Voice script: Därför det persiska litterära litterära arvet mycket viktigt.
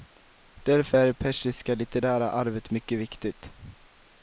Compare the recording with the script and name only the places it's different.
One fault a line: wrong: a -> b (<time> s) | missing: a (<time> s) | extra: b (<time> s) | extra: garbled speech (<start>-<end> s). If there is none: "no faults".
extra: är (0.9 s)
missing: litterära (2.3 s)